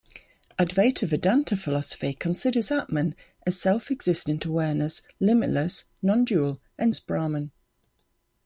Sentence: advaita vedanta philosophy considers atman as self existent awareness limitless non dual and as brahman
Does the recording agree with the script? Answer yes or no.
yes